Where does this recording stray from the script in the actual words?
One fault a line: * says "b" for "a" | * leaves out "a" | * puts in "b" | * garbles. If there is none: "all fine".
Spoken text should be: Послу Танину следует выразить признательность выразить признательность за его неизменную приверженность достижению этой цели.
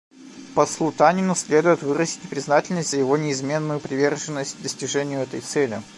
* leaves out "выразить признательность"